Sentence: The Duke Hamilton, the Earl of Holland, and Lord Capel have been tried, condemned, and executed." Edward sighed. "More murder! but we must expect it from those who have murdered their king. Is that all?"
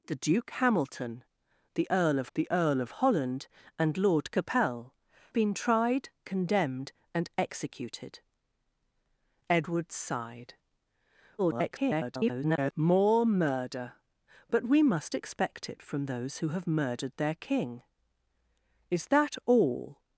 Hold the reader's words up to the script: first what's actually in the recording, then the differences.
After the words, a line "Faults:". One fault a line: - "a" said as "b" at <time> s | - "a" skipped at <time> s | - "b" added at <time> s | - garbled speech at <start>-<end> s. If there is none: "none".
The Duke Hamilton, the Earl of the Earl of Holland, and Lord Capel been tried, condemned, and executed." Edward sighed. [garbled] "More murder! but we must expect it from those who have murdered their king. Is that all?"
Faults:
- "the Earl of" added at 2.3 s
- "have" skipped at 4.9 s
- garbled speech at 11.4-12.7 s